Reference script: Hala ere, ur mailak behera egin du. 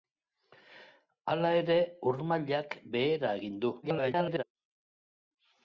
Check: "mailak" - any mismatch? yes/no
no